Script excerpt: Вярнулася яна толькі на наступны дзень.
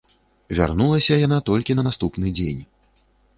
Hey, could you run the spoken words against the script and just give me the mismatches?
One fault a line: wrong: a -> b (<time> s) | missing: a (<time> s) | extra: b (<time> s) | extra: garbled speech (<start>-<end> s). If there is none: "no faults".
no faults